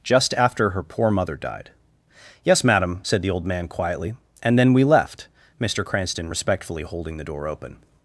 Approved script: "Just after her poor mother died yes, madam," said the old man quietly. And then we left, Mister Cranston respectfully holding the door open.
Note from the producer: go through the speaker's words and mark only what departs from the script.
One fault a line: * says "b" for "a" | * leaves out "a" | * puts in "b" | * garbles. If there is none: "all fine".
all fine